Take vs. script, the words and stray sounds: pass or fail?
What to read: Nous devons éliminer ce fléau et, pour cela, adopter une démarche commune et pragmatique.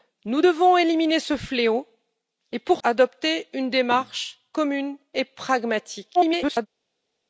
fail